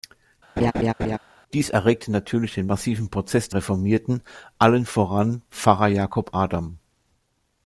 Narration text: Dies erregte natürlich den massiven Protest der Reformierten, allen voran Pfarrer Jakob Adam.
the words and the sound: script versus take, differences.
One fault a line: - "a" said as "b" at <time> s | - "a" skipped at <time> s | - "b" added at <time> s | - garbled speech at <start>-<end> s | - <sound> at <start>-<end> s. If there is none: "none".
- laugh at 0.6-1.2 s
- "der" skipped at 3.5 s